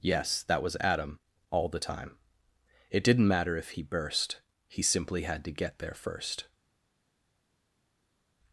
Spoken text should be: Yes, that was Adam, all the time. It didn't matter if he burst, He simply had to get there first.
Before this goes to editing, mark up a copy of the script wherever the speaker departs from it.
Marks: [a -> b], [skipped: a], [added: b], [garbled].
Yes, that was Adam, all the time. It didn't matter if he burst, He simply had to get there first.